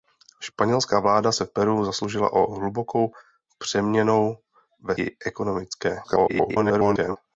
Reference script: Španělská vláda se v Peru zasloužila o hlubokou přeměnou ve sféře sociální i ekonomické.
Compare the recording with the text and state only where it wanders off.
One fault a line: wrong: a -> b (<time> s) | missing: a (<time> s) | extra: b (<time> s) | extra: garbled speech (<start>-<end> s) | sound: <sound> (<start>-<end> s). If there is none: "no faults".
missing: sféře sociální (5.0 s)
extra: garbled speech (6.0-7.2 s)